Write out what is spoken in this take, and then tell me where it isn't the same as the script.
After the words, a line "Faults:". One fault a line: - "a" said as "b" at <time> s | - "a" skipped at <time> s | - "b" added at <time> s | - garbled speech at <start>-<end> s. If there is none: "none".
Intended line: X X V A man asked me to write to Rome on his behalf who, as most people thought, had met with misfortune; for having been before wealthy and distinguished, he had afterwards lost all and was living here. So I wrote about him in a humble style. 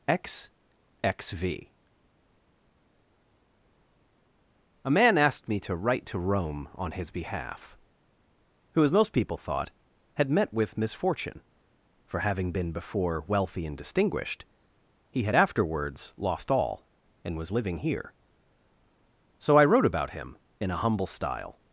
X X V A man asked me to write to Rome on his behalf who, as most people thought, had met with misfortune; for having been before wealthy and distinguished, he had afterwards lost all and was living here. So I wrote about him in a humble style.
Faults:
none